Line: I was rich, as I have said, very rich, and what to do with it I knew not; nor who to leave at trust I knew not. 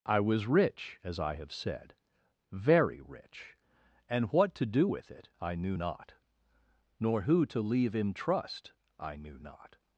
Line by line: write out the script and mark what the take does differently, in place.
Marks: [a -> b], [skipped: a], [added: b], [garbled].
I was rich, as I have said, very rich, and what to do with it I knew not; nor who to leave [at -> in] trust I knew not.